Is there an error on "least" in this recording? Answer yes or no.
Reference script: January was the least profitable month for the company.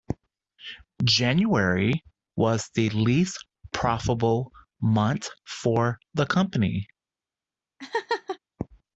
no